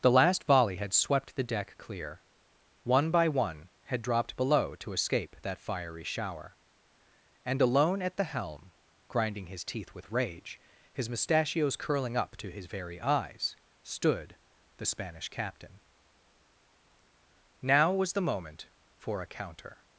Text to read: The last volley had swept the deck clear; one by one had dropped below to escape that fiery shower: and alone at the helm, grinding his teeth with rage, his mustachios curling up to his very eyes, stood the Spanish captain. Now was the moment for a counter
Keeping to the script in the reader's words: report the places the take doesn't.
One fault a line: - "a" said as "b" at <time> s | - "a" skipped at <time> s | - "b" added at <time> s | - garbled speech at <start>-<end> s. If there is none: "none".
none